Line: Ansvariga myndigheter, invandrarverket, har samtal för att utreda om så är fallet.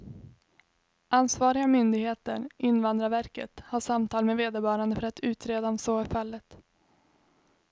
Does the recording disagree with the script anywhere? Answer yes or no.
yes